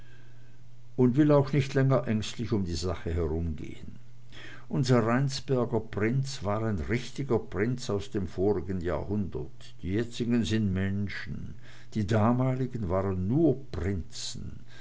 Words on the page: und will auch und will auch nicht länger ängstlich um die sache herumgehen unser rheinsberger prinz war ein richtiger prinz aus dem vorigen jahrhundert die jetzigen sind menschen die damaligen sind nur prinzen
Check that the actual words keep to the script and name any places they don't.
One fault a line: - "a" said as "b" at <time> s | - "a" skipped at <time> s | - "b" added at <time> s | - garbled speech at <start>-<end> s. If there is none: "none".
- "und will auch" skipped at 1.5 s
- "sind" said as "waren" at 12.9 s